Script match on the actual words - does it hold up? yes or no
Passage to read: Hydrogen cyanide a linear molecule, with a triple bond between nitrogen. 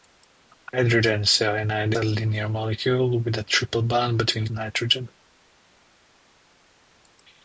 yes